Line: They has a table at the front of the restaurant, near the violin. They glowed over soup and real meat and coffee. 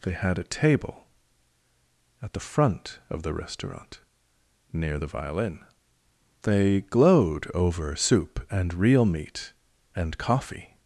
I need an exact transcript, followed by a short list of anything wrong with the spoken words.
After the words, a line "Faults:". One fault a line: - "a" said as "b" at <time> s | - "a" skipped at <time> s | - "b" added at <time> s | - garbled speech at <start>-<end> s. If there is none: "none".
They had a table at the front of the restaurant, near the violin. They glowed over soup and real meat and coffee.
Faults:
- "has" said as "had" at 0.1 s